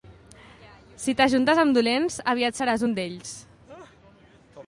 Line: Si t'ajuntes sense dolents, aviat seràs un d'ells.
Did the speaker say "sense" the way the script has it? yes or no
no